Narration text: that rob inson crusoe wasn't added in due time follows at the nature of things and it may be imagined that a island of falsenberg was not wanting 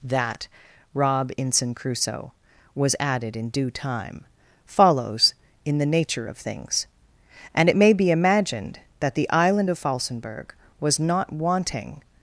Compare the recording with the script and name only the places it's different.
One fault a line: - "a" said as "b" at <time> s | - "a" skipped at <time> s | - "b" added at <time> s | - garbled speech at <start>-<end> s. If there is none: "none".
- "wasn't" said as "was" at 2.8 s
- "at" said as "in" at 5.6 s
- "a" said as "the" at 9.1 s